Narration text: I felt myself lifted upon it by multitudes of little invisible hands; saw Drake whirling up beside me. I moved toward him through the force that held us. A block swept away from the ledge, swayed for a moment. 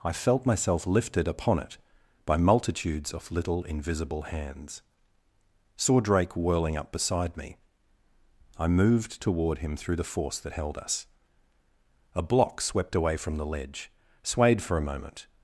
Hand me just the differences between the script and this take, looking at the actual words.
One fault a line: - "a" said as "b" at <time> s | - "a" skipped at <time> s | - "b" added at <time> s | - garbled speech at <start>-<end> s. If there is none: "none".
none